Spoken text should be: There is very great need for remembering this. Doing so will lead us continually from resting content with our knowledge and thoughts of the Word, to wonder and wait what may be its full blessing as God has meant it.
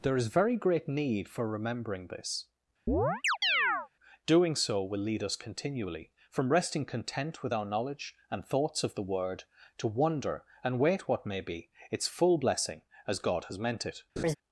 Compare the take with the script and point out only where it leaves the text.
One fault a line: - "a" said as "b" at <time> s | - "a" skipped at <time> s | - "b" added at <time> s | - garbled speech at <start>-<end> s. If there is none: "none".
none